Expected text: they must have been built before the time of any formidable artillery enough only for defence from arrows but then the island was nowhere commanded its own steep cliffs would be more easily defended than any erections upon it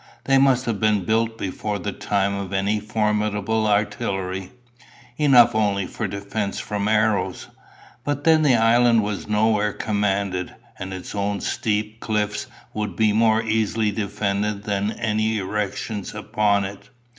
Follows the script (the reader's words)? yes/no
no